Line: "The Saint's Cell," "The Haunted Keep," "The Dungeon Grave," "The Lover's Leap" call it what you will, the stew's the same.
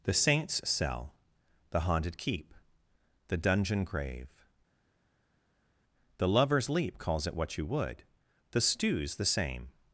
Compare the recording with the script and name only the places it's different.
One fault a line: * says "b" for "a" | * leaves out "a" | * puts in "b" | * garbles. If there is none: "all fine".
* says "calls" for "call"
* says "would" for "will"